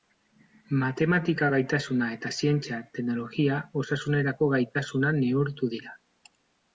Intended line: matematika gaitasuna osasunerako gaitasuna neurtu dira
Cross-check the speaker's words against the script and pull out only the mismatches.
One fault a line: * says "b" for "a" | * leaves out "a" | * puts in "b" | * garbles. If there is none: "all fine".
* puts in "eta zientzia teknologia"